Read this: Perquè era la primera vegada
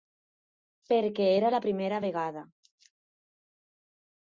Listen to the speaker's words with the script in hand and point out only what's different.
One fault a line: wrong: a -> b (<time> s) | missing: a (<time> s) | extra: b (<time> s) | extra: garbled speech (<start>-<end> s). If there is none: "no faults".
no faults